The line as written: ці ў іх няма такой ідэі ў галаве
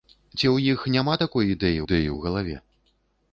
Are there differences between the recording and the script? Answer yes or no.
yes